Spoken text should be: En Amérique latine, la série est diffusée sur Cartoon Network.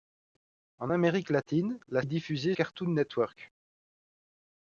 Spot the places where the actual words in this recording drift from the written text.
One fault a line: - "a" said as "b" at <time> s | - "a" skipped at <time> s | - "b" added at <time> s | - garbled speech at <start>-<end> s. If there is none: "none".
- "série" skipped at 2.0 s
- "sur" skipped at 2.5 s